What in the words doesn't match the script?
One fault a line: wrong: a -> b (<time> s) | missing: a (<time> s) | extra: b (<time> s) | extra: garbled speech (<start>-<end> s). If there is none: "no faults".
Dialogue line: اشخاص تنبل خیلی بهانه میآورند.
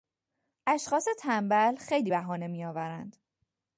no faults